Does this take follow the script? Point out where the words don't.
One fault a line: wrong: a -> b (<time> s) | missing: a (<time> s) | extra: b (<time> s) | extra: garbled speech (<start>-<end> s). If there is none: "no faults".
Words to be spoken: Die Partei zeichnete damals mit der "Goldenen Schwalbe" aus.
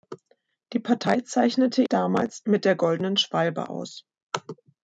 no faults